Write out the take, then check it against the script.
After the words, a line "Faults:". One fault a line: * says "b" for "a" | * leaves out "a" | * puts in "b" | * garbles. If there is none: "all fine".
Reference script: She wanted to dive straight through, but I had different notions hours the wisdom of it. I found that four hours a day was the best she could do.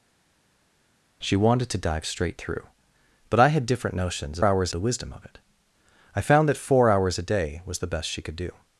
She wanted to dive straight through, but I had different notions hours the wisdom of it. I found that four hours a day was the best she could do.
Faults:
all fine